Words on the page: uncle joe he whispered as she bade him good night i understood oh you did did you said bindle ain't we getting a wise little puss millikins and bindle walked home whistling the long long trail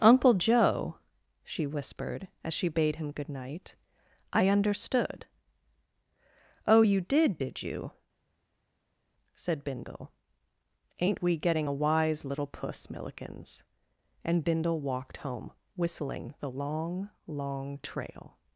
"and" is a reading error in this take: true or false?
false